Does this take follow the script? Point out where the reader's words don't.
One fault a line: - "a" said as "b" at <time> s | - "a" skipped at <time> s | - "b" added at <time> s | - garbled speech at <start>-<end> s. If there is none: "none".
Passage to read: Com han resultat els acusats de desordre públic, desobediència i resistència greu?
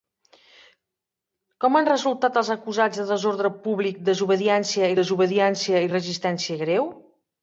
- "desobediència" added at 5.0 s